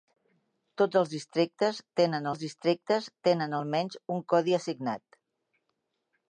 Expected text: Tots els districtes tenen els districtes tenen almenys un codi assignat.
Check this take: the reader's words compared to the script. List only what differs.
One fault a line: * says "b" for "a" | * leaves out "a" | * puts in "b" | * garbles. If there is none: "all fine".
all fine